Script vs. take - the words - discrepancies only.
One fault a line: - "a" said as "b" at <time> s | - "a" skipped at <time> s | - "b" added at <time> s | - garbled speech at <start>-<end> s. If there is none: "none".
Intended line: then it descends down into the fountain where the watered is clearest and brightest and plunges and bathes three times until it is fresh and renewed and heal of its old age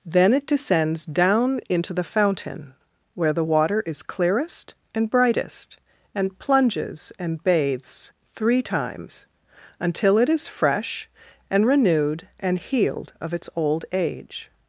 - "watered" said as "water" at 3.4 s
- "heal" said as "healed" at 12.6 s